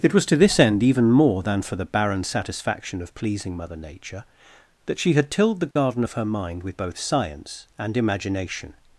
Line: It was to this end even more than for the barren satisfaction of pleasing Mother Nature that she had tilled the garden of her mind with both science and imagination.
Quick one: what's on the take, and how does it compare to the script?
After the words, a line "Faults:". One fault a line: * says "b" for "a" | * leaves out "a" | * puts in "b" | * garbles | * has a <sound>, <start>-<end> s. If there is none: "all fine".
It was to this end even more than for the barren satisfaction of pleasing Mother Nature that she had tilled the garden of her mind with both science and imagination.
Faults:
* has a dropout, 5.7-5.8 s